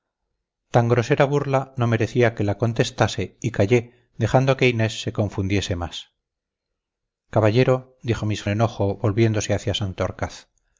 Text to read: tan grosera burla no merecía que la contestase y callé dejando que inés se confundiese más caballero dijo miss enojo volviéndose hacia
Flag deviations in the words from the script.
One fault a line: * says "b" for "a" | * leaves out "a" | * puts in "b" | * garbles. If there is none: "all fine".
all fine